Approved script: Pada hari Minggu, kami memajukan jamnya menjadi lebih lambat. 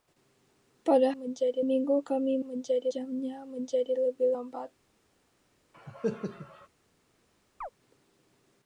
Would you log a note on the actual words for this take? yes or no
yes